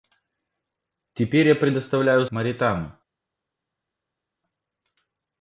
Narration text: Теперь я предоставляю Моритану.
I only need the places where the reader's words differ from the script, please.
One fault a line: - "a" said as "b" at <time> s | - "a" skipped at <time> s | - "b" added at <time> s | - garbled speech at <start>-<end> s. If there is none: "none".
none